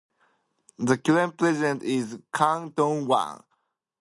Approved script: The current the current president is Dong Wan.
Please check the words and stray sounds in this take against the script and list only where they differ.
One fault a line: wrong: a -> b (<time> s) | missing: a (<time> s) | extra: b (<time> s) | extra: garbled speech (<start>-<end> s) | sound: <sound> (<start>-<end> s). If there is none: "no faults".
missing: the current (1.4 s)
extra: Kang (2.3 s)